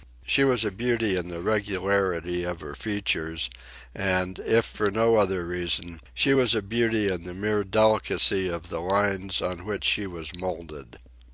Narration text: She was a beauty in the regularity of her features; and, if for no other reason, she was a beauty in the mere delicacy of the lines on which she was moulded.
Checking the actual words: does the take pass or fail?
pass